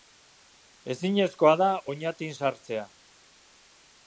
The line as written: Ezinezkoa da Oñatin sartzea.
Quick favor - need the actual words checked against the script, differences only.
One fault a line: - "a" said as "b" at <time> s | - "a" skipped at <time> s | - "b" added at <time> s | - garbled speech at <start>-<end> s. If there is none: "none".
none